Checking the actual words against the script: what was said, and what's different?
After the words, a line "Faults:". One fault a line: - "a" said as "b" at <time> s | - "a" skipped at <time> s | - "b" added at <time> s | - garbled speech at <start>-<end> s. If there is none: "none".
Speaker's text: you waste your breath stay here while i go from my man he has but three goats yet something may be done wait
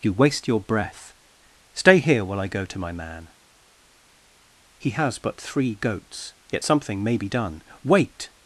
you waste your breath stay here while i go to my man he has but three goats yet something may be done wait
Faults:
- "from" said as "to" at 2.6 s